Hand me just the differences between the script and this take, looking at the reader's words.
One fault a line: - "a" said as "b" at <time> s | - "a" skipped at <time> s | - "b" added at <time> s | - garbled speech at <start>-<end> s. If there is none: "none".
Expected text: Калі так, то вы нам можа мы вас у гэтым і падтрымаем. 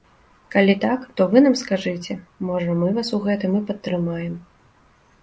- "скажыце" added at 1.6 s